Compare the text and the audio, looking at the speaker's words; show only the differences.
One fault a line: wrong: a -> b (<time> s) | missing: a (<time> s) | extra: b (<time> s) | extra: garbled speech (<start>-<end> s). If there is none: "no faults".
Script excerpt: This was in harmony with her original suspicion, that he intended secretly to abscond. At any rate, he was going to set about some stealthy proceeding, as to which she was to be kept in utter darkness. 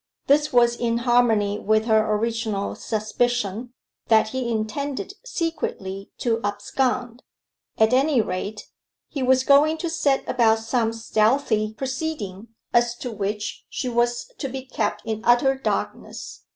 no faults